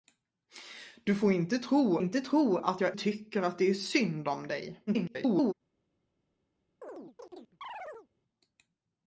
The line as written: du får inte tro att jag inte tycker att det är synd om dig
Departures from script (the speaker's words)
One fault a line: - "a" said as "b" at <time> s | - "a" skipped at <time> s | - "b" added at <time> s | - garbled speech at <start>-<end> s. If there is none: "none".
- "inte tro" added at 2.0 s
- "inte" skipped at 3.0 s
- garbled speech at 4.9-5.5 s